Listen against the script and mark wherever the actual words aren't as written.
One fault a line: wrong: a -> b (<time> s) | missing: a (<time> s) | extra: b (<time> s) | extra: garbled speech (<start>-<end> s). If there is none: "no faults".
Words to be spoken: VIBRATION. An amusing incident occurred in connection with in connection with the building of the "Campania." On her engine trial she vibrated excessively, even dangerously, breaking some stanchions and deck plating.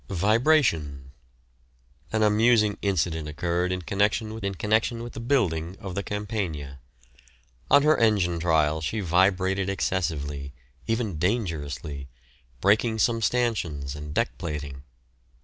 no faults